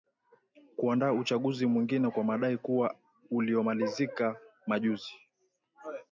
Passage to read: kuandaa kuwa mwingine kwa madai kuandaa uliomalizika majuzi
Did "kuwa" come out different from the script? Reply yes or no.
yes